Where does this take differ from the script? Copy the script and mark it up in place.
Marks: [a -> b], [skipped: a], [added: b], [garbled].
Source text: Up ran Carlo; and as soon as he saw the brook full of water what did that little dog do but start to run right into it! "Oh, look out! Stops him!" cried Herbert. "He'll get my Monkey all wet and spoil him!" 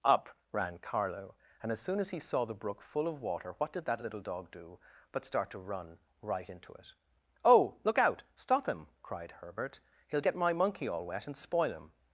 Up ran Carlo; and as soon as he saw the brook full of water what did that little dog do but start to run right into it! "Oh, look out! [Stops -> Stop] him!" cried Herbert. "He'll get my Monkey all wet and spoil him!"